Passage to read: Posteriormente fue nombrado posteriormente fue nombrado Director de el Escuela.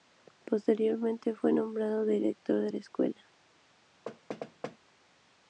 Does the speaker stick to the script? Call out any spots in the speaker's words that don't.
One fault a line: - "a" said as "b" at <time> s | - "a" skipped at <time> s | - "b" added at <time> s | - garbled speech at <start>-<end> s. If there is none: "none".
- "posteriormente fue nombrado" skipped at 2.0 s
- "el" said as "la" at 2.7 s